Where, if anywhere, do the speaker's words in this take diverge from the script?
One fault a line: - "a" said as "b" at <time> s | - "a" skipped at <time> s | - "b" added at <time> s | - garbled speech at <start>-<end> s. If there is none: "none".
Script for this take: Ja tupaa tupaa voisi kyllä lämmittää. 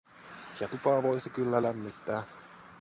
- "tupaa" skipped at 1.0 s